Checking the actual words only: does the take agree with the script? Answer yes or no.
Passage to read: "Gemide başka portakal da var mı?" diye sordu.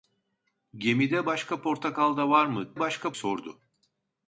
no